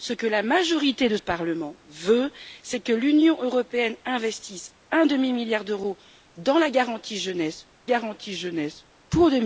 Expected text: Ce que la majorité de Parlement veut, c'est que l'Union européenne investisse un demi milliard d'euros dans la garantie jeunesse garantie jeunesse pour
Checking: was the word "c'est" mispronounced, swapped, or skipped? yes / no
no